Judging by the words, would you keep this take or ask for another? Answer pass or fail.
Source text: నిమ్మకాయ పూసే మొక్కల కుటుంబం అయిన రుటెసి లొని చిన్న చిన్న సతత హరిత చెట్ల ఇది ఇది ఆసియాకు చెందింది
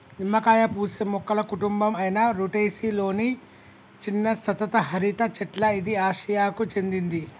fail